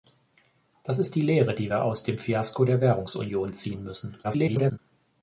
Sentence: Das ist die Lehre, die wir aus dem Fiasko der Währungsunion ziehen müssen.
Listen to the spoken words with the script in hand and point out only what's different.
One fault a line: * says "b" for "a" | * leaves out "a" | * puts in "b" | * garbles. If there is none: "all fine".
* garbles